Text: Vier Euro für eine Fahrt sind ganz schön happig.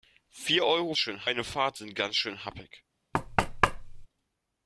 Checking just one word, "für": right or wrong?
wrong